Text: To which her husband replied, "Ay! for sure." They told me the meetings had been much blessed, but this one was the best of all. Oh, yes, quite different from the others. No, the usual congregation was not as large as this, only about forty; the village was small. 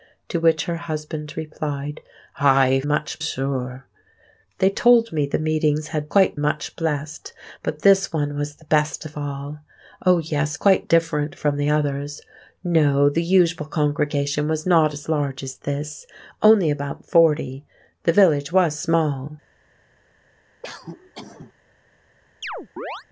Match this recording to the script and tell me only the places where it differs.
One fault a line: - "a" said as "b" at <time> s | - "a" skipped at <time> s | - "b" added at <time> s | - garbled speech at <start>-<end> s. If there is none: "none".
- "for" said as "much" at 2.9 s
- "been" said as "quite" at 6.1 s